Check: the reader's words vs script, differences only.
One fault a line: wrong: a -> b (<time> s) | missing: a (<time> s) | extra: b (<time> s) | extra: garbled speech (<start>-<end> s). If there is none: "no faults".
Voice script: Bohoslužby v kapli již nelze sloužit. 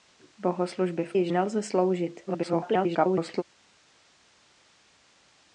missing: kapli (1.1 s)
extra: garbled speech (2.3-3.4 s)